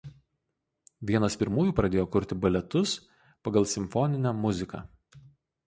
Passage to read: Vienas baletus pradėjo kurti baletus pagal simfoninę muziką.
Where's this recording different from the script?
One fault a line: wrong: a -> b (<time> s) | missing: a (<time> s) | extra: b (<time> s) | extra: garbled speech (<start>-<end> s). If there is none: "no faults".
wrong: baletus -> pirmųjų (1.4 s)